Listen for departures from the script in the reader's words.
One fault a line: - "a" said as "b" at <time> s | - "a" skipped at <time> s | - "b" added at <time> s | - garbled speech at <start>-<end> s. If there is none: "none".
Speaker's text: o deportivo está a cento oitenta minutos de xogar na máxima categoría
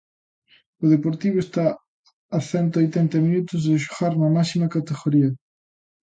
none